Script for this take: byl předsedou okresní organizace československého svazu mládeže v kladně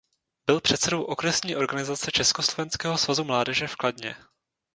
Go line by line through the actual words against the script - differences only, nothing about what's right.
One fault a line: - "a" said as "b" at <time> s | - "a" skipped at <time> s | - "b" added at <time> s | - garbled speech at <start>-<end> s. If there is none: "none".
none